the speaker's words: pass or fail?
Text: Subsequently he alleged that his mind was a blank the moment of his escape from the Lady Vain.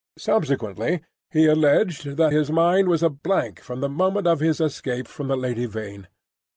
fail